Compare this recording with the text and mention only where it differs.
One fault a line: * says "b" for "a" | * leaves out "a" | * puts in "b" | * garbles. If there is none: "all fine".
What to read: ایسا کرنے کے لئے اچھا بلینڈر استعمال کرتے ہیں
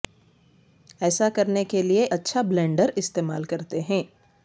all fine